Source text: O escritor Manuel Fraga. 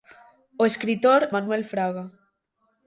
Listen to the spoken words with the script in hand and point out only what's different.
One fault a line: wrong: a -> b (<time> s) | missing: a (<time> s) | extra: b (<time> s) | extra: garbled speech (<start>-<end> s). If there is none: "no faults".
no faults